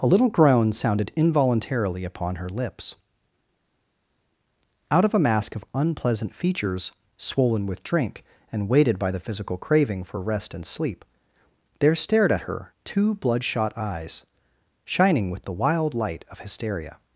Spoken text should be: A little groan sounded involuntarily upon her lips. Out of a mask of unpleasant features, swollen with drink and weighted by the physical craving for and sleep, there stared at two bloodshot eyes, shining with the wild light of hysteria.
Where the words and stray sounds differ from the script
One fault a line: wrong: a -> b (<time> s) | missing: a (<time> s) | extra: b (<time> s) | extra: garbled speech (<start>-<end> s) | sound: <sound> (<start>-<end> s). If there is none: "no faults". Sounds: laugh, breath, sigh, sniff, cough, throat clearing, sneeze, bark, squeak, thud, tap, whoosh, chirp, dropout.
extra: rest (10.2 s)
extra: her (12.5 s)